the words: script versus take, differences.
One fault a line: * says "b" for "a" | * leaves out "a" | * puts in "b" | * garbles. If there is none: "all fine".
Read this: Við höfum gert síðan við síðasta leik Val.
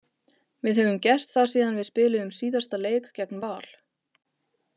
* puts in "það"
* puts in "spiluðum"
* puts in "gegn"